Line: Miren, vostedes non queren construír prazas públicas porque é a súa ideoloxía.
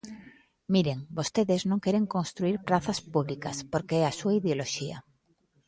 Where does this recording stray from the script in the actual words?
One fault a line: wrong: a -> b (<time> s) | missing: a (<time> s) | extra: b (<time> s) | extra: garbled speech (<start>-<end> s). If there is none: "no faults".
no faults